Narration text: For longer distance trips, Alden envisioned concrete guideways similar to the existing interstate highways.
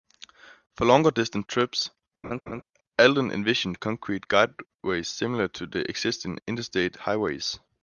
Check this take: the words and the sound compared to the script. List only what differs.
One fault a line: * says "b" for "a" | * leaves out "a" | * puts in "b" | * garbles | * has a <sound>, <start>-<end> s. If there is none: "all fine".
* has a laugh, 2.2-2.6 s